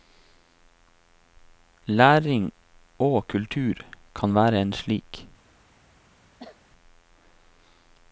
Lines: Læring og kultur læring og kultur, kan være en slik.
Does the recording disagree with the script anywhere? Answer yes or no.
yes